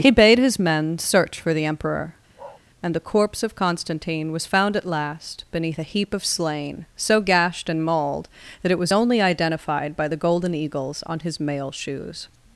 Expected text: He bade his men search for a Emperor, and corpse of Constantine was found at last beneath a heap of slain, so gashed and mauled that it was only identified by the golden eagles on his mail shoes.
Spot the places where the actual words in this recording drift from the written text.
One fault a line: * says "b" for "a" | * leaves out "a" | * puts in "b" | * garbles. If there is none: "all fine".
* says "the" for "a"
* puts in "the"